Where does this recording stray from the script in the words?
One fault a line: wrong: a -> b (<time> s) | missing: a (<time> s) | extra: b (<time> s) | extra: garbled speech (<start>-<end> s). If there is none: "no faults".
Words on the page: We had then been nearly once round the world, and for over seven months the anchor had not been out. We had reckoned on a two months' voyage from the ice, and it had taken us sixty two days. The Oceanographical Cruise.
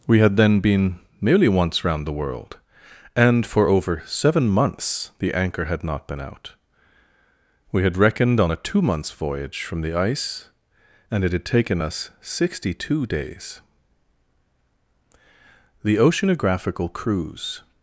no faults